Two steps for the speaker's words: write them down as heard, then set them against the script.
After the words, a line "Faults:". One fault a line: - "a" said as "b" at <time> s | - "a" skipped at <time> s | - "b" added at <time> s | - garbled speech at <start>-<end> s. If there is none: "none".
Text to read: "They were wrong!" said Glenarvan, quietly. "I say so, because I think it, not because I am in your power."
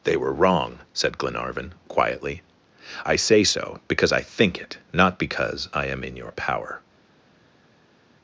"They were wrong!" said Glenarvan, quietly. "I say so, because I think it, not because I am in your power."
Faults:
none